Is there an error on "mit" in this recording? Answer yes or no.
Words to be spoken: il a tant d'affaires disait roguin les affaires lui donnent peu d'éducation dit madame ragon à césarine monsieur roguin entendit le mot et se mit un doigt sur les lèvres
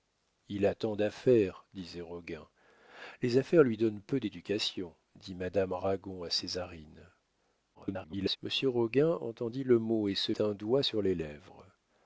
yes